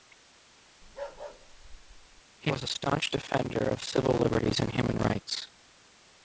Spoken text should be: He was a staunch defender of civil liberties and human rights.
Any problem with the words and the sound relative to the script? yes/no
yes